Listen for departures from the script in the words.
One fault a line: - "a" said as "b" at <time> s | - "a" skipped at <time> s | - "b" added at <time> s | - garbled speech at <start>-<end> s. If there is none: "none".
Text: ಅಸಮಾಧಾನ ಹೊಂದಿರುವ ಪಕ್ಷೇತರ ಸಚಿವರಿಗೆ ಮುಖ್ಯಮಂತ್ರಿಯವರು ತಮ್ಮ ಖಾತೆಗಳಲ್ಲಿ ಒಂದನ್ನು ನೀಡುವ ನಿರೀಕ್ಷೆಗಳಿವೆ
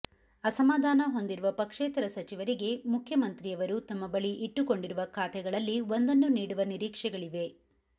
- "ಬಳಿ ಇಟ್ಟುಕೊಂಡಿರುವ" added at 4.1 s